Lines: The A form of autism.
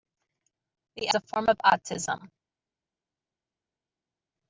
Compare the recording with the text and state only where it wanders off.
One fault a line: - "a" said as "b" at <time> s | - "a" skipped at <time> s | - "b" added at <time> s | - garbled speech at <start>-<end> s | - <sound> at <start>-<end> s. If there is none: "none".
none